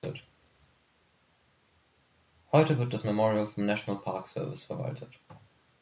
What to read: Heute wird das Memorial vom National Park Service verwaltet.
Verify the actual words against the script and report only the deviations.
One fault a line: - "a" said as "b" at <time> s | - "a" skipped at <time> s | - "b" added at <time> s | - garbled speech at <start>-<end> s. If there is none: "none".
none